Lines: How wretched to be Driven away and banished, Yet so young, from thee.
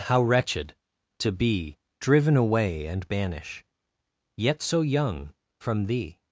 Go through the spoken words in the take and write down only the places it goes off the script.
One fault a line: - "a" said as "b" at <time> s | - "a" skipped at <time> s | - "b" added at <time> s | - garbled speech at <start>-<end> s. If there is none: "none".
- "banished" said as "banish" at 3.1 s